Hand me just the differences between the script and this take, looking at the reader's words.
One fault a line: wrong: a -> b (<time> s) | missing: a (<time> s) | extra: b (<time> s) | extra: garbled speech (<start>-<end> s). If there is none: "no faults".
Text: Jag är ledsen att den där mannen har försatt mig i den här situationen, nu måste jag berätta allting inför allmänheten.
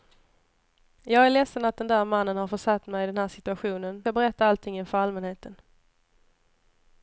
missing: nu måste (4.0 s)